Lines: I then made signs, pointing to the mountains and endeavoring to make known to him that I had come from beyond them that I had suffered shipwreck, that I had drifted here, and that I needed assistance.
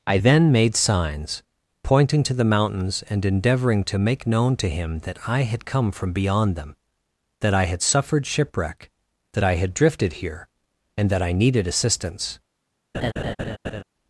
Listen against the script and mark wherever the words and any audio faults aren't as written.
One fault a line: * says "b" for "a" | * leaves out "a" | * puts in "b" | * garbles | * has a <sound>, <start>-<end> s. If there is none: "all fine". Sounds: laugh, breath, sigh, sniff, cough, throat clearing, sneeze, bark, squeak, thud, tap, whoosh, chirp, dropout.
* has a laugh, 12.9-13.8 s